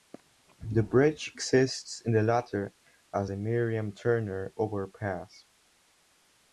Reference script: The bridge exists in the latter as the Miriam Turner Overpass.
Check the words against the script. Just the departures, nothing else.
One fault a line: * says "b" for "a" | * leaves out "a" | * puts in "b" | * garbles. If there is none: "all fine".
all fine